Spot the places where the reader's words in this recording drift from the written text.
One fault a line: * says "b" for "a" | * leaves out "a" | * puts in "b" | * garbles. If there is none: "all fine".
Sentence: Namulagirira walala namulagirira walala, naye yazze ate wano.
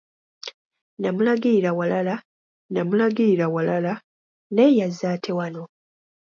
all fine